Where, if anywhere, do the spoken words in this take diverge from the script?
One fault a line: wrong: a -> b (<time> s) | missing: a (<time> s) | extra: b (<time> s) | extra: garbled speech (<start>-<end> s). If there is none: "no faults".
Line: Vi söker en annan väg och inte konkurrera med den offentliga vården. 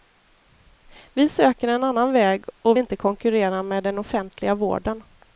no faults